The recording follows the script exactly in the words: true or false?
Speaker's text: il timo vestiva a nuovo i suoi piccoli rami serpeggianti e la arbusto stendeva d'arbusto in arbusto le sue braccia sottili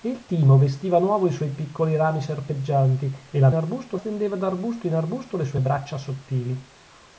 true